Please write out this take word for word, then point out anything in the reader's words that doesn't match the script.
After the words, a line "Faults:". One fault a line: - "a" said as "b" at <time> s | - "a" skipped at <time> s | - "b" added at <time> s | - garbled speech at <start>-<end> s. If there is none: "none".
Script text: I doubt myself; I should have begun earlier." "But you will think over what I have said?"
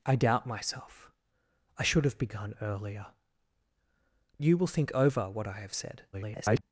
I doubt myself; I should have begun earlier." "You will think over what I have said?" [garbled]
Faults:
- "But" skipped at 3.1 s
- garbled speech at 6.1-6.6 s